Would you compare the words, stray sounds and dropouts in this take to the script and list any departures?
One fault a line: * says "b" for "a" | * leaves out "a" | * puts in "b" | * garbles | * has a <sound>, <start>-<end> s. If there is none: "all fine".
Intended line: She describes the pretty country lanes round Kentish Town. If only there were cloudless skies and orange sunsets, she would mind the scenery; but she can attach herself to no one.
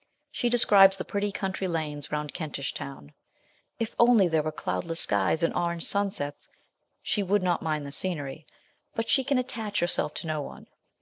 * puts in "not"